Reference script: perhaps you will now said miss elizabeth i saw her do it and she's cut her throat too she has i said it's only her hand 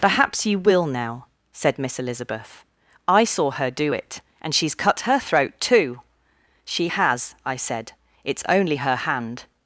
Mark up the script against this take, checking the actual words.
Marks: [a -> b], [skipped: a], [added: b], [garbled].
perhaps you will now said miss elizabeth i saw her do it and she's cut her throat too she has i said it's only her hand